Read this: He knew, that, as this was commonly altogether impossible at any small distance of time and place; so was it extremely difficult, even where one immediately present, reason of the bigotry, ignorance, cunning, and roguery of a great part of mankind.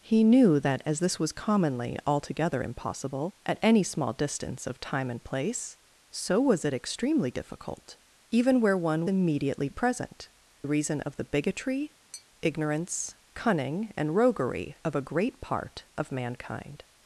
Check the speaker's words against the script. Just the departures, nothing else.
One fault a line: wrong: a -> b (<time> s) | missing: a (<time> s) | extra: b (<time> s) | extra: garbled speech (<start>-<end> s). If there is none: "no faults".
no faults